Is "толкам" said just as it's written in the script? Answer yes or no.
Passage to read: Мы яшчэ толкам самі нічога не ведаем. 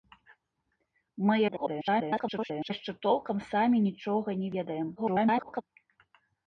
yes